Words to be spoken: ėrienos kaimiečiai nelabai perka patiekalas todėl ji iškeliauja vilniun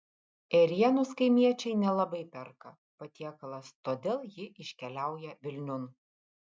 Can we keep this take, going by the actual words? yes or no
yes